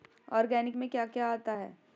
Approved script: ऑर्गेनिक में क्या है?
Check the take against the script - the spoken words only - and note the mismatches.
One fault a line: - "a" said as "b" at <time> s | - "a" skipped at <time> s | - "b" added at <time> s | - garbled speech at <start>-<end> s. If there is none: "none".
- "क्या आता" added at 1.1 s